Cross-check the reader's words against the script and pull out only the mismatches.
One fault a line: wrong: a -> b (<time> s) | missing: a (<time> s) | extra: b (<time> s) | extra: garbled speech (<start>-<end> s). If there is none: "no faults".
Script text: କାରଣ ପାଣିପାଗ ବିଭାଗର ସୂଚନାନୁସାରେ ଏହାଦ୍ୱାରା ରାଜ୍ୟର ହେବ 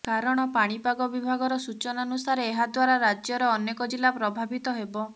extra: ଅନେକ ଜିଲ୍ଲା ପ୍ରଭାବିତ (3.5 s)